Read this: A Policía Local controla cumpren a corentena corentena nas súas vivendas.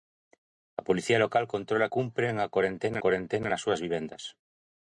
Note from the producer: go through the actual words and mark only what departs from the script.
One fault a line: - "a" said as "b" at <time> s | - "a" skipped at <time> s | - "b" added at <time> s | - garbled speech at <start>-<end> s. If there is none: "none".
none